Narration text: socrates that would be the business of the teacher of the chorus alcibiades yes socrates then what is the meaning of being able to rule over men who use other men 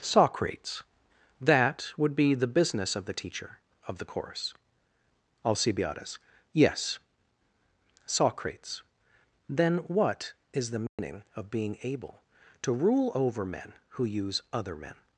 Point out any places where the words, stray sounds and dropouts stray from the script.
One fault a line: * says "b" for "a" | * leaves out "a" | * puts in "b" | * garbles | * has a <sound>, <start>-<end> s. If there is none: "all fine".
* says "course" for "chorus"
* has a dropout, 10.9-11.0 s